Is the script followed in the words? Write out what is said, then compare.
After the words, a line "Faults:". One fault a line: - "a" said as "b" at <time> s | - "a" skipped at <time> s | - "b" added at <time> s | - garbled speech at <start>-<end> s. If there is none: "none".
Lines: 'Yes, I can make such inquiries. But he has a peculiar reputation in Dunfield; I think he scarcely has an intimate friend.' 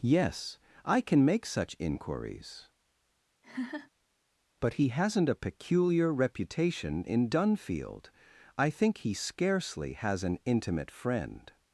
'Yes, I can make such inquiries. But he hasn't a peculiar reputation in Dunfield; I think he scarcely has an intimate friend.'
Faults:
- "has" said as "hasn't" at 4.9 s